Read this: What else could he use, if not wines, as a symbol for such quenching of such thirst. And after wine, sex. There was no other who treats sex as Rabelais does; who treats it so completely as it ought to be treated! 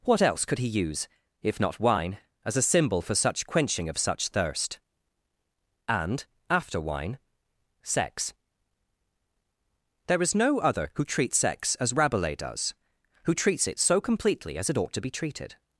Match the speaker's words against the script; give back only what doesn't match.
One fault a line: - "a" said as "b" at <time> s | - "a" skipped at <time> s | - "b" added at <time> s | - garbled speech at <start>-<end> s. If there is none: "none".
- "wines" said as "wine" at 1.8 s
- "was" said as "is" at 10.2 s